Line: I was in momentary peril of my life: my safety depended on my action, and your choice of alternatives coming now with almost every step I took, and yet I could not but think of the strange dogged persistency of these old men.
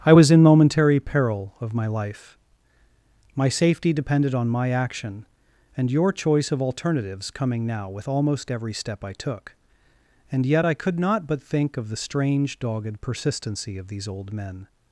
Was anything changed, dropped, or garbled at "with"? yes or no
no